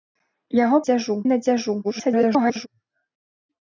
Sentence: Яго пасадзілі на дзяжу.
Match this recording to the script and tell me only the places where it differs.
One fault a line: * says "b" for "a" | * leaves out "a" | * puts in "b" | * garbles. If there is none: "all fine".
* says "дзяжу" for "пасадзілі"
* garbles